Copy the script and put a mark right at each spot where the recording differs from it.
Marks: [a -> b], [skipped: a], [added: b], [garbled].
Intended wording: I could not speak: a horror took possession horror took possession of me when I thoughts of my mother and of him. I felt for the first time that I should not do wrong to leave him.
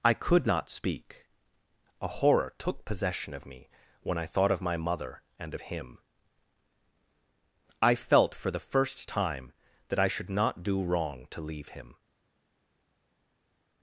I could not speak: a horror took possession [skipped: horror took possession] of me when I [thoughts -> thought] of my mother and of him. I felt for the first time that I should not do wrong to leave him.